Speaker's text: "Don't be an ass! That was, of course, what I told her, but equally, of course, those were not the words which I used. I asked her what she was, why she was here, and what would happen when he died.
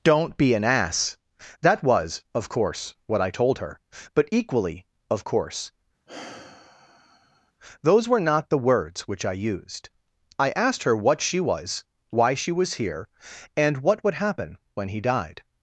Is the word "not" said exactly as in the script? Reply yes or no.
yes